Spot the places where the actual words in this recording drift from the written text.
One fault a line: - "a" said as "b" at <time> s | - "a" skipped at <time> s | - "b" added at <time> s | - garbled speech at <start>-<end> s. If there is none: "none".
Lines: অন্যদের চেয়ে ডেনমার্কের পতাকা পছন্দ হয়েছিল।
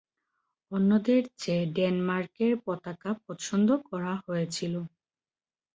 - "করা" added at 3.9 s